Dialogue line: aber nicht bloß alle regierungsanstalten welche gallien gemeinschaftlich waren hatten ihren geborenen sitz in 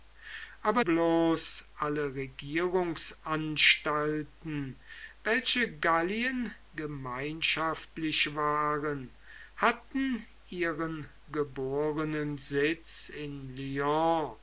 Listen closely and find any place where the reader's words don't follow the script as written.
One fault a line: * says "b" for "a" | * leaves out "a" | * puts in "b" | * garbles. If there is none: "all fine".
* leaves out "nicht"